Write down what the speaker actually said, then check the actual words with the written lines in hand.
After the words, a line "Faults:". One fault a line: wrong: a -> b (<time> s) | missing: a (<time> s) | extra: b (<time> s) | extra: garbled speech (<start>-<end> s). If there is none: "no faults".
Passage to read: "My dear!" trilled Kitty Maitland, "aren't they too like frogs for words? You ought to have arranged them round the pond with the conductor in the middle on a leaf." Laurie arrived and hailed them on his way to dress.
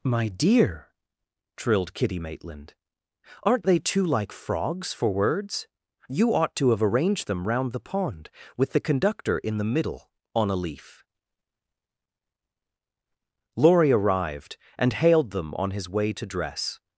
"My dear!" trilled Kitty Maitland, "aren't they too like frogs for words? You ought to have arranged them round the pond with the conductor in the middle on a leaf." Laurie arrived and hailed them on his way to dress.
Faults:
no faults